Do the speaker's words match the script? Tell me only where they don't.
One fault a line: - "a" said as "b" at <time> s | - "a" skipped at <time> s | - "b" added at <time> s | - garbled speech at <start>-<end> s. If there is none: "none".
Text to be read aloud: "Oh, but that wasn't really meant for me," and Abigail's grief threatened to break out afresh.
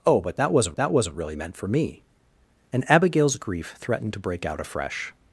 - "that wasn't" added at 0.8 s